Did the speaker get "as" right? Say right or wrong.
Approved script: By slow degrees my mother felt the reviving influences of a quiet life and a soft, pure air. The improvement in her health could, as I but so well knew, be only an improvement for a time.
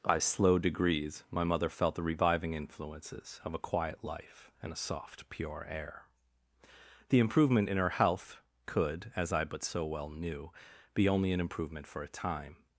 right